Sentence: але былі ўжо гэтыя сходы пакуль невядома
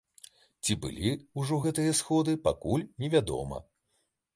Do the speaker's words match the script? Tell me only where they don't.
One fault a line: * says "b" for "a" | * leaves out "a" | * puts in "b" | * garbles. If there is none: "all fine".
* says "ці" for "але"